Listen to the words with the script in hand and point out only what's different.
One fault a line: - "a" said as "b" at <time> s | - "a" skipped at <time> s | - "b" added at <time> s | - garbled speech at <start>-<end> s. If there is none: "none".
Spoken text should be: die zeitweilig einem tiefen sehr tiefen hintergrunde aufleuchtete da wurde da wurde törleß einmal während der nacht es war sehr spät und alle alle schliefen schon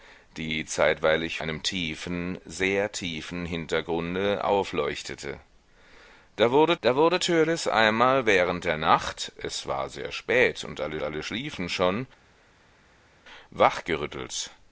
none